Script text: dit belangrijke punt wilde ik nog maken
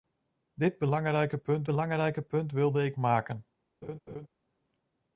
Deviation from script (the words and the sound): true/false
true